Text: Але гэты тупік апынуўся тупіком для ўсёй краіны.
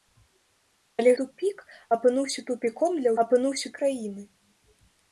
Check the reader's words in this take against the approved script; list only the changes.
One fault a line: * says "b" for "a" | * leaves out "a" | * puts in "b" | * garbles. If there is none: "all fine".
* leaves out "гэты"
* says "апынуўся" for "ўсёй"